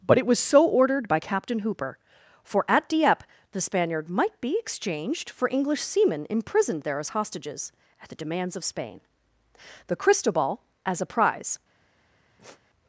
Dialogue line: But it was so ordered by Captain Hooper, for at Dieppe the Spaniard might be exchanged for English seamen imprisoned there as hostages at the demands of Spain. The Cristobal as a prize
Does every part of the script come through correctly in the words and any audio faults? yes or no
no